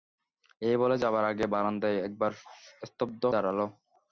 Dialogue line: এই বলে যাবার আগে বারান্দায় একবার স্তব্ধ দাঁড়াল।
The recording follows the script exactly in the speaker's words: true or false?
true